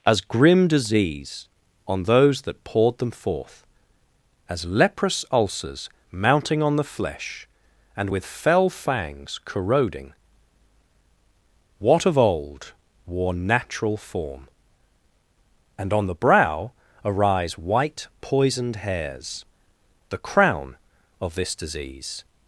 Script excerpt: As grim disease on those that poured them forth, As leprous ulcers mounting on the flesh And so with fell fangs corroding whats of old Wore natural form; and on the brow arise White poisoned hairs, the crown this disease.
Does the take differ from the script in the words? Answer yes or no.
yes